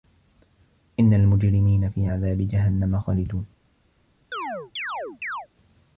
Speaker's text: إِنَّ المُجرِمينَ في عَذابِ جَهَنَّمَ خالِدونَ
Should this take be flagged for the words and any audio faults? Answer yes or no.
yes